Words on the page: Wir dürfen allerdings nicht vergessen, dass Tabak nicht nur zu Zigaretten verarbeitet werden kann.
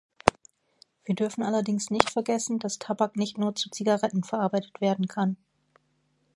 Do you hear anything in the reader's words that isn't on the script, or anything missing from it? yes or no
no